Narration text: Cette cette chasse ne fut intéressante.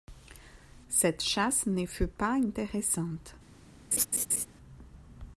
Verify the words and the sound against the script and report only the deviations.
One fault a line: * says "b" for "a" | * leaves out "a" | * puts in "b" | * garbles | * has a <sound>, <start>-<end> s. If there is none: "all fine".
* leaves out "cette"
* puts in "pas"
* has a laugh, 3.9-4.5 s